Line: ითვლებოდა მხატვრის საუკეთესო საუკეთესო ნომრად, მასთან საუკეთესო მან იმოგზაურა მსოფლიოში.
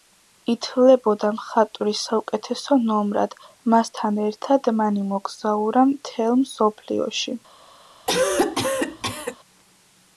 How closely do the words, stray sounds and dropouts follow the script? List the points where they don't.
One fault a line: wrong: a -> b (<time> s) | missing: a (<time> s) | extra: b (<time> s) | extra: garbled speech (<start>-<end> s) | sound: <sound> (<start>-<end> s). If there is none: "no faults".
missing: საუკეთესო (2.8 s)
wrong: საუკეთესო -> ერთად (4.3 s)
extra: მთელ (5.9 s)
sound: cough (8.1-9.4 s)